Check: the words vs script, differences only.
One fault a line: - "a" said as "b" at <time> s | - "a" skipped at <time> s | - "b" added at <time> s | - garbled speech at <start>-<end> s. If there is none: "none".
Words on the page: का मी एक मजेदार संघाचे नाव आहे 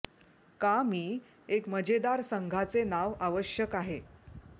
- "आवश्यक" added at 3.2 s